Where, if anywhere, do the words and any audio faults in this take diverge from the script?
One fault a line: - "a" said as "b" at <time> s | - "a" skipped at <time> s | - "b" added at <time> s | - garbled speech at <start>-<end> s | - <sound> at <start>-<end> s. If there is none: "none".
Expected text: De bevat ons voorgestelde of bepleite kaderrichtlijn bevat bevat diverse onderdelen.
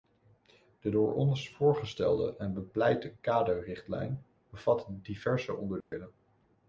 - "bevat" said as "door" at 0.9 s
- "of" said as "en" at 2.4 s
- "bevat" skipped at 4.9 s
- dropout at 5.8-5.9 s